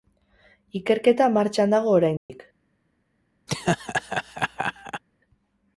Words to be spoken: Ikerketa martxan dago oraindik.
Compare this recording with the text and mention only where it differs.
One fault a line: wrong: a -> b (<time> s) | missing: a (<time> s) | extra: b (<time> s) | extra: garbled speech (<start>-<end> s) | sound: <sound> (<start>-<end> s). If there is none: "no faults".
sound: dropout (2.2-2.3 s)
sound: laugh (3.5-5.0 s)